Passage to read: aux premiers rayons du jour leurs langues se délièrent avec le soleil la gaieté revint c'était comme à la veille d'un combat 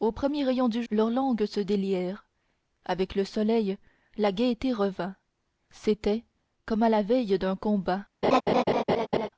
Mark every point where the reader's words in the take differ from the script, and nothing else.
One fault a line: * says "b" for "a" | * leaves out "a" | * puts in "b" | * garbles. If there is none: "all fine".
* leaves out "jour"